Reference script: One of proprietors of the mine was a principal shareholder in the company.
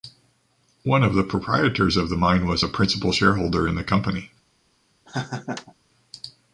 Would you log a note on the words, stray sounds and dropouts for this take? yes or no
yes